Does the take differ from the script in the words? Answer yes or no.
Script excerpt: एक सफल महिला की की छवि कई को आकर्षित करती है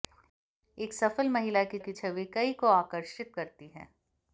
no